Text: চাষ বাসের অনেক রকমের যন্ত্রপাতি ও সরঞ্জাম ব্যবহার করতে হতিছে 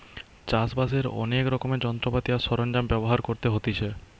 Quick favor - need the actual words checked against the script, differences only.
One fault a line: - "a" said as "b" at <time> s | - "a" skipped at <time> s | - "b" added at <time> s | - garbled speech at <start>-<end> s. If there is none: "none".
- "ও" said as "আর" at 2.3 s